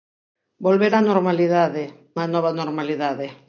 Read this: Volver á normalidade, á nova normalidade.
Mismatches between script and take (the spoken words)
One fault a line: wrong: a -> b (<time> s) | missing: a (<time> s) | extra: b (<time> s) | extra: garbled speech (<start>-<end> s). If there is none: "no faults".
no faults